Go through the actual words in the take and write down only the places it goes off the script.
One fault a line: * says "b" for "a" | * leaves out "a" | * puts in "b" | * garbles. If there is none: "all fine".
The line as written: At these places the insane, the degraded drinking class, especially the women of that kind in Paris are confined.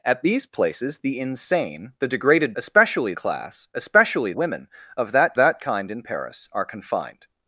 * says "especially" for "drinking"
* leaves out "the"
* puts in "that"